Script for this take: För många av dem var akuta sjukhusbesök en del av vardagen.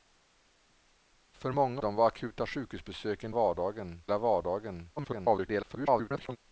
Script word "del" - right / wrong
wrong